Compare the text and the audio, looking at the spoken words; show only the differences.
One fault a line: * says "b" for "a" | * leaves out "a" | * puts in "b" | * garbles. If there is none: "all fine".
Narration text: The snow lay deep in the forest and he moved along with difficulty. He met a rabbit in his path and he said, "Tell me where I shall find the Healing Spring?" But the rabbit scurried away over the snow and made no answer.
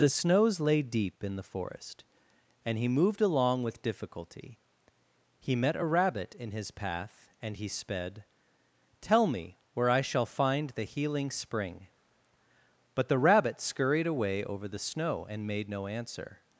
* says "snows" for "snow"
* says "sped" for "said"